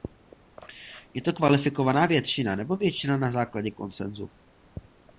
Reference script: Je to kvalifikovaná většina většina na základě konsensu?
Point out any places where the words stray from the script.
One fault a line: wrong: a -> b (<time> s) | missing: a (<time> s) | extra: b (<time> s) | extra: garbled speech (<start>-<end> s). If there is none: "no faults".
extra: nebo (2.6 s)